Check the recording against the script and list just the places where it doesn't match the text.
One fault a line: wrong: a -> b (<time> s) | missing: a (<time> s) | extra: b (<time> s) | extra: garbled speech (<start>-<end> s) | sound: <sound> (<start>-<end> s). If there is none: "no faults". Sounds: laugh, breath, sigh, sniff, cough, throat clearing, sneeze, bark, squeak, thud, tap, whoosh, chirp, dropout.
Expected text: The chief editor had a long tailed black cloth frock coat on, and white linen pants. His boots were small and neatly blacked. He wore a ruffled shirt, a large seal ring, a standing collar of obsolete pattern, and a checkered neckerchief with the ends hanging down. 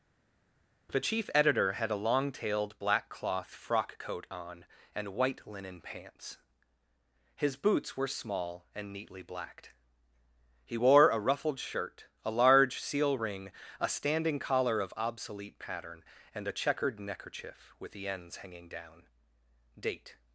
extra: Date (19.8 s)